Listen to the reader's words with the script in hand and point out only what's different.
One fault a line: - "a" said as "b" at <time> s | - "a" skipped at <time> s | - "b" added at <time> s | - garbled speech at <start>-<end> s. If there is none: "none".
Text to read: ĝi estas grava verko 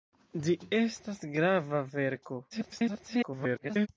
- garbled speech at 2.5-3.9 s